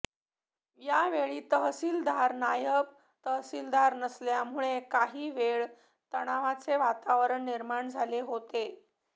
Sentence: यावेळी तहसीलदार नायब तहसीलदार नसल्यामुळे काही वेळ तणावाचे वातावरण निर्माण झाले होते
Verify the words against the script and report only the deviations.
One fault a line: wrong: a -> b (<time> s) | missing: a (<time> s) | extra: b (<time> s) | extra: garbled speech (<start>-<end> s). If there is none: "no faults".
no faults